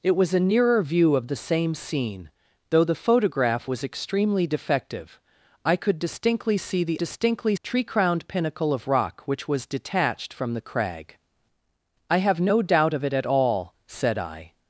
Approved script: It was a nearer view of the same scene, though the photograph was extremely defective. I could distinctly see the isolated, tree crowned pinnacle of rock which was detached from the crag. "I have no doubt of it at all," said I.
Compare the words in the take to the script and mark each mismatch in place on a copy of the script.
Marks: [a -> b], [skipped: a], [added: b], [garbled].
It was a nearer view of the same scene, though the photograph was extremely defective. I could distinctly see the [isolated, -> distinctly] tree crowned pinnacle of rock which was detached from the crag. "I have no doubt of it at all," said I.